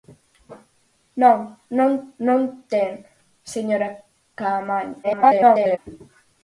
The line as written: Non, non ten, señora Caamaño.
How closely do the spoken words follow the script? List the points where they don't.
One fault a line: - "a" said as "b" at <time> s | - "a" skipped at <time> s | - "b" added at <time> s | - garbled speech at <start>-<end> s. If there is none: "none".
- "non" added at 2.3 s
- garbled speech at 5.0-5.8 s